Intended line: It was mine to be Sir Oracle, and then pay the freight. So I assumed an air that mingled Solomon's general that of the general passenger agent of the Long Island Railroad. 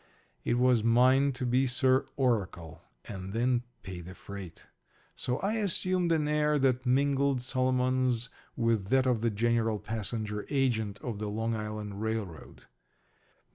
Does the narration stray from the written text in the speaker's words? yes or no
yes